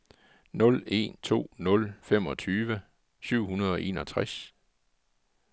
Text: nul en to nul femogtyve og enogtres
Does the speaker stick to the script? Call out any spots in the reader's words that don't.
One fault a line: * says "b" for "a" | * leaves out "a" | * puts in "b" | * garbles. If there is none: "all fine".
* puts in "syv hundrede"